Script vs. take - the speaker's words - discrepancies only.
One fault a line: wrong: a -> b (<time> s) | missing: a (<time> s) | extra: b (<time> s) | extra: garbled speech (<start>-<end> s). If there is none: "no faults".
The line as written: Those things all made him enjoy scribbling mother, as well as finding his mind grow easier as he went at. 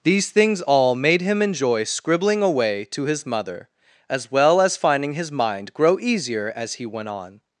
wrong: Those -> These (0.0 s)
extra: away to his (2.4 s)
wrong: at -> on (7.1 s)